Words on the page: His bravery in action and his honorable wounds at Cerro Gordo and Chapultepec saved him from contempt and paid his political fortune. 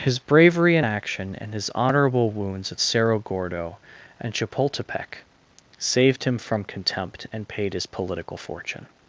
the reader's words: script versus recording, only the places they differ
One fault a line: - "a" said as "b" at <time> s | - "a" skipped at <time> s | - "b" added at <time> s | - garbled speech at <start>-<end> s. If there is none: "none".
none